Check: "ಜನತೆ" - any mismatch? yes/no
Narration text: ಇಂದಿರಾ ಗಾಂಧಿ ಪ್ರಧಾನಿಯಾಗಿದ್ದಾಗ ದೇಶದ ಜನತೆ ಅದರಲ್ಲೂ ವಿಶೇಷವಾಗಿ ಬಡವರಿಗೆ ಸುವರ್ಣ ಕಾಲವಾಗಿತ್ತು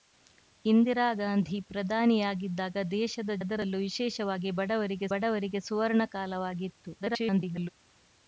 yes